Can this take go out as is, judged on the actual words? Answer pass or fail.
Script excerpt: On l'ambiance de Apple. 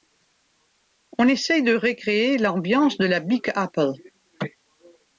fail